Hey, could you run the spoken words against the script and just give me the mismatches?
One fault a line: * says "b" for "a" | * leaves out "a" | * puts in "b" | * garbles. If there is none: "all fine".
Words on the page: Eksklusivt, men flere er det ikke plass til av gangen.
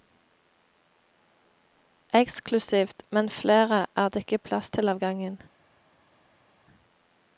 all fine